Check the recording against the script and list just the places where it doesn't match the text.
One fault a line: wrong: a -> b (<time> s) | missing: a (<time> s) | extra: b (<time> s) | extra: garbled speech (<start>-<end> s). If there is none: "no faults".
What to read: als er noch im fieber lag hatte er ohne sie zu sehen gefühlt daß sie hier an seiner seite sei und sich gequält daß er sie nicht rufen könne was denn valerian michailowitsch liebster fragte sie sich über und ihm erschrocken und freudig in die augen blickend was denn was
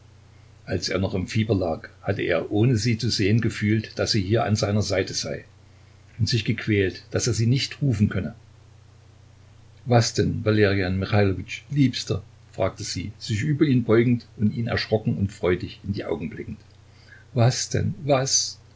extra: ihn beugend (13.7 s)